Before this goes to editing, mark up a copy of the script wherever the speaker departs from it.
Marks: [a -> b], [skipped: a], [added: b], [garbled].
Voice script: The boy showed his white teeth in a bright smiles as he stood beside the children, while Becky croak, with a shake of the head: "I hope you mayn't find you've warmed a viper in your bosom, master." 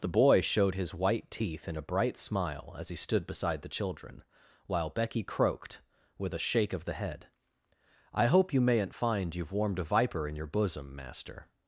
The boy showed his white teeth in a bright [smiles -> smile] as he stood beside the children, while Becky [croak, -> croaked] with a shake of the head: "I hope you mayn't find you've warmed a viper in your bosom, master."